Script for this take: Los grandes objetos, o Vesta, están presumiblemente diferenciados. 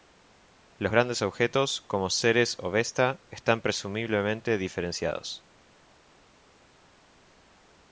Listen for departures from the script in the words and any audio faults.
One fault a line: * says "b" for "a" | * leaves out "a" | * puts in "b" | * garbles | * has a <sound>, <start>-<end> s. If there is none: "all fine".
* puts in "como Ceres"